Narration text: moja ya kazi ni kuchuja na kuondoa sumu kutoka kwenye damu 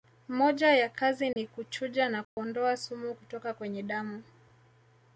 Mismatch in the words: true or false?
false